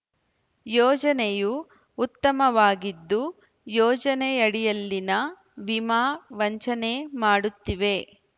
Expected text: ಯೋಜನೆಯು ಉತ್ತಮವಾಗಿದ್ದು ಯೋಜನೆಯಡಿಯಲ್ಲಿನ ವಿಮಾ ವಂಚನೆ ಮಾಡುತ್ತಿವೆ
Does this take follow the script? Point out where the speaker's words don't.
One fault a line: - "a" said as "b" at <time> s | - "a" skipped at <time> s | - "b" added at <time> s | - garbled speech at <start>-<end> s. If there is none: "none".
none